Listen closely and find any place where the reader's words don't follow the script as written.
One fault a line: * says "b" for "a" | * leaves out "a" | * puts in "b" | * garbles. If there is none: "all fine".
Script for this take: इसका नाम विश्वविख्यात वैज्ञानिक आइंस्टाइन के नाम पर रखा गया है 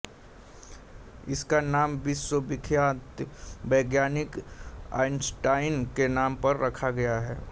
all fine